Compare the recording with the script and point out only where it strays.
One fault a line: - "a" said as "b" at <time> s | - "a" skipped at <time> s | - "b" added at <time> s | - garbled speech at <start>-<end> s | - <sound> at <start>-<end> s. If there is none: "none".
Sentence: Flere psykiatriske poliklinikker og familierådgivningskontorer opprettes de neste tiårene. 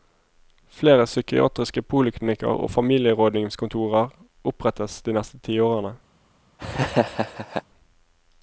- laugh at 6.6-7.6 s